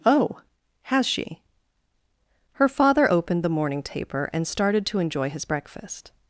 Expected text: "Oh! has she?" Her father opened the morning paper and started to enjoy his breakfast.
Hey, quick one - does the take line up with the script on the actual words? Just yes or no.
no